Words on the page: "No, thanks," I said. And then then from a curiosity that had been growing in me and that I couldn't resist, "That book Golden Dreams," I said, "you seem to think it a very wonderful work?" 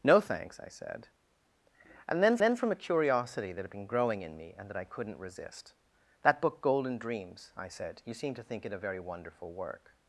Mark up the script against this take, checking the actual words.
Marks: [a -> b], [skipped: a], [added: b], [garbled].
"No, thanks," I said. And then then from a curiosity that had been growing in me and that I couldn't resist, "That book Golden Dreams," I said, "you seem to think it a very wonderful work?"